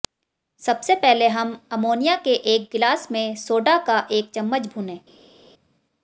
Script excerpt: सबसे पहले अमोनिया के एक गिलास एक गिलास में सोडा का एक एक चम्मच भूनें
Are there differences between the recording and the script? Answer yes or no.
yes